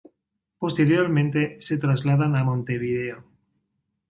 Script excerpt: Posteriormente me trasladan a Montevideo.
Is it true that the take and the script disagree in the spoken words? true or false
true